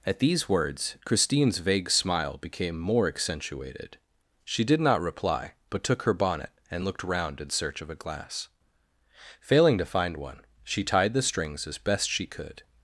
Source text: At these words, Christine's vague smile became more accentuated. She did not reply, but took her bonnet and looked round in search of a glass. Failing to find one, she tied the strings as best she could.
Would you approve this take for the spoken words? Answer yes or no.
yes